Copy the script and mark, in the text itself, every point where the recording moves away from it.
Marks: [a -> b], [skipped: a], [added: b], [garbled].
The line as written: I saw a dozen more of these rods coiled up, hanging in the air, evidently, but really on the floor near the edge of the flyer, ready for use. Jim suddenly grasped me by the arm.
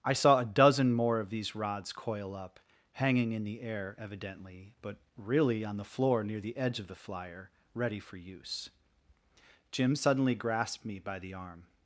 I saw a dozen more of these rods [coiled -> coil] up, hanging in the air, evidently, but really on the floor near the edge of the flyer, ready for use. Jim suddenly grasped me by the arm.